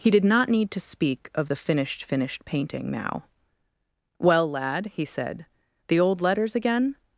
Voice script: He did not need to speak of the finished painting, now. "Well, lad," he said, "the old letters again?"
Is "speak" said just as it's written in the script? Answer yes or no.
yes